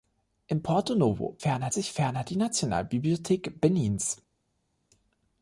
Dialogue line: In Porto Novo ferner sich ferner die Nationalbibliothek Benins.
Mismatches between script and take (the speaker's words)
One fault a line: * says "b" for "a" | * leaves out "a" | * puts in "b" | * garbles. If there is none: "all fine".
all fine